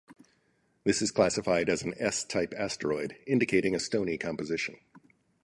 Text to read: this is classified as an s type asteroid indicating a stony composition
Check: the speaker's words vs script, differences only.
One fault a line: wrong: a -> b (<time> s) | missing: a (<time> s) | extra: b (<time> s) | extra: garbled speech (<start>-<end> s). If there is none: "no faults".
no faults